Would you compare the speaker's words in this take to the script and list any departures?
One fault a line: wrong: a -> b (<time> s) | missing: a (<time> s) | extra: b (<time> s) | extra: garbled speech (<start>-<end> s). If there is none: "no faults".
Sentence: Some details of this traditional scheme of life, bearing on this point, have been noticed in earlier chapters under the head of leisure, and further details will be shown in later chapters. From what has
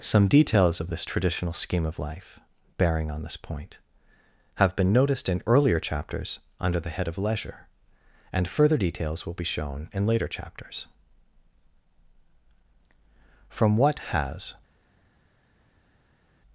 no faults